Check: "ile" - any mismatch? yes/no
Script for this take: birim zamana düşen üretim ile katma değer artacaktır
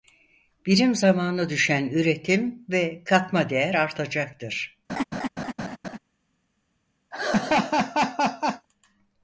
yes